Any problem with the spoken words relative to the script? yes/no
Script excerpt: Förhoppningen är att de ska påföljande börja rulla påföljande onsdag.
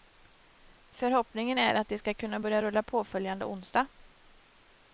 yes